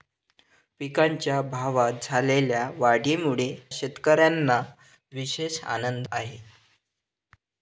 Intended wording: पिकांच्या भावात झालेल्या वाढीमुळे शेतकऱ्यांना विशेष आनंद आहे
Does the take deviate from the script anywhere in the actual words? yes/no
no